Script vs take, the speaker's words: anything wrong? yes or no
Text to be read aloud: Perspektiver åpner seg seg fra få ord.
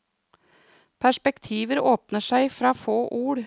yes